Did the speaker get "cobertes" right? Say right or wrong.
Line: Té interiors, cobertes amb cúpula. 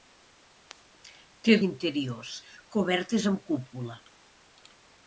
right